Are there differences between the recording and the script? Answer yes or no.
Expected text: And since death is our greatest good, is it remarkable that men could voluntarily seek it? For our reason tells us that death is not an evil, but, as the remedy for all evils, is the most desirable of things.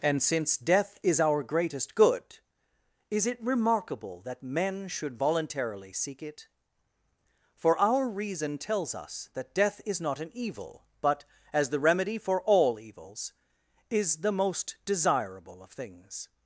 yes